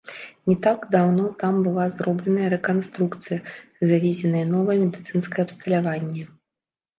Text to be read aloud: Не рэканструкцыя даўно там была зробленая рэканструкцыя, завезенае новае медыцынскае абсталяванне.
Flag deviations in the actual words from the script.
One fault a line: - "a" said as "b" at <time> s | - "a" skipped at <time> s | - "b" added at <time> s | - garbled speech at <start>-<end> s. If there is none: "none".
- "рэканструкцыя" said as "так" at 0.7 s